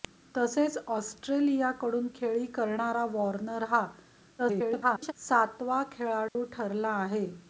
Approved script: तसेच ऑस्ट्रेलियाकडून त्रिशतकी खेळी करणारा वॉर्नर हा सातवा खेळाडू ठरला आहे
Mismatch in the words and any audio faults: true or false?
true